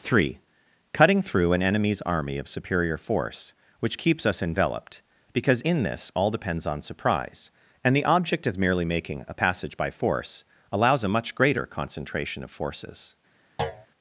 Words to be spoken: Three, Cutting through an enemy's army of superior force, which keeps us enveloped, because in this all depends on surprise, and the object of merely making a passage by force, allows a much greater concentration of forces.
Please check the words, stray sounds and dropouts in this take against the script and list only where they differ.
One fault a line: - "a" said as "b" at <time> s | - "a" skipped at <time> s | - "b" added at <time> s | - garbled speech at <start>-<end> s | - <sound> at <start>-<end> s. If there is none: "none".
- thud at 13.6-13.9 s